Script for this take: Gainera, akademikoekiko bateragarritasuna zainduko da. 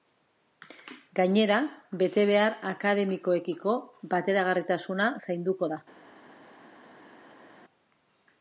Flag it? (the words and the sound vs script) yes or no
yes